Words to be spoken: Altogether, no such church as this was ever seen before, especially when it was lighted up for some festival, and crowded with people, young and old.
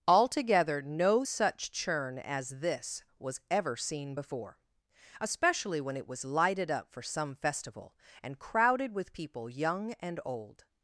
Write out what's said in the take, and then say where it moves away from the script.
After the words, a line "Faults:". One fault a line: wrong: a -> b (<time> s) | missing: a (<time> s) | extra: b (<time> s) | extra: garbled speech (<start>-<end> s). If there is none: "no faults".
Altogether, no such churn as this was ever seen before, especially when it was lighted up for some festival, and crowded with people, young and old.
Faults:
wrong: church -> churn (1.7 s)